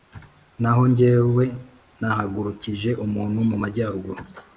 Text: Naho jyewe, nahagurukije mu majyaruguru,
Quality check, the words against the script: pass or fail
fail